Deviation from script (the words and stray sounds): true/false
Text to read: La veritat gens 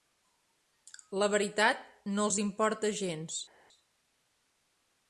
true